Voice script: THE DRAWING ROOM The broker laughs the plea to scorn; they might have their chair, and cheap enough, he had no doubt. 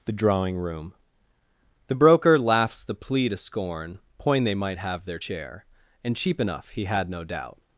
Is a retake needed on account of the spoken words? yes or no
yes